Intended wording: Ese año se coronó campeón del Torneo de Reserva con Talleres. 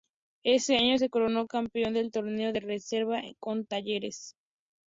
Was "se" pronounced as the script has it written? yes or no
yes